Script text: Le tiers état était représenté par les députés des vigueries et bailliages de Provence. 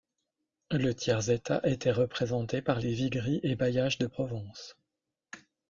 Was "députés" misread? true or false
true